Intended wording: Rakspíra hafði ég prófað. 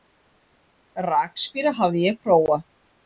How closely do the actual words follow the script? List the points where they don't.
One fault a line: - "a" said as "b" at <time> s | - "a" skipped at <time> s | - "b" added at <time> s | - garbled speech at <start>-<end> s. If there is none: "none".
none